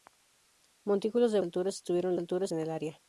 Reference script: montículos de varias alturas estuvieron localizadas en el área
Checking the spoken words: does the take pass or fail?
fail